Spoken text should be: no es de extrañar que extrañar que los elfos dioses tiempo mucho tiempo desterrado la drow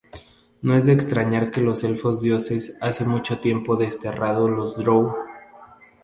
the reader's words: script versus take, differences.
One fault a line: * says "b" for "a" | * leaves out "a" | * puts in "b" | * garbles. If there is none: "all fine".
* leaves out "extrañar que"
* says "hace" for "tiempo"
* says "los" for "la"